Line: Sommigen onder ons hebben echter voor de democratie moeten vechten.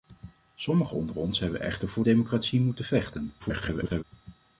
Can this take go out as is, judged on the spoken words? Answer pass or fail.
fail